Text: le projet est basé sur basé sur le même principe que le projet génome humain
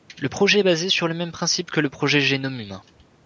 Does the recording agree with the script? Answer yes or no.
no